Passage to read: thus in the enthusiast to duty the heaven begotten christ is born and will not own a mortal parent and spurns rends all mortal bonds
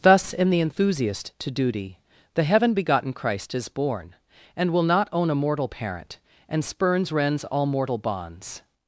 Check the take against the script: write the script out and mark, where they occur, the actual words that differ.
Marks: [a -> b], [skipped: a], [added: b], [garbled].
thus in the enthusiast to duty the heaven begotten christ is born and will not own a mortal parent and spurns rends all mortal bonds